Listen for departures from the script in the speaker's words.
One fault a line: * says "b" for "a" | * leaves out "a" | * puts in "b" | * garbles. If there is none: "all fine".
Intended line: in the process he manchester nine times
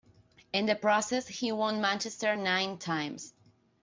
* puts in "won"